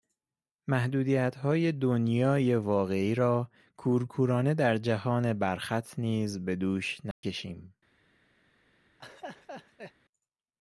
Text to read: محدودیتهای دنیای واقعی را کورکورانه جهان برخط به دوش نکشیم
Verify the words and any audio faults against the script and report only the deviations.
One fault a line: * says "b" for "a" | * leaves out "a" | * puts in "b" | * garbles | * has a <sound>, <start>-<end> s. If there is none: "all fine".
* puts in "در"
* puts in "نیز"
* has a dropout, 7.1-7.2 s
* has a laugh, 9.0-9.9 s